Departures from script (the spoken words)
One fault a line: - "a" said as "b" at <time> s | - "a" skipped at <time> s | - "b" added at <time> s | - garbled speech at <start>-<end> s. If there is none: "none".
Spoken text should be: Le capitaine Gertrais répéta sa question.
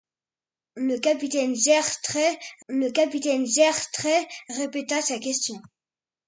- "le capitaine Gertrais" added at 2.7 s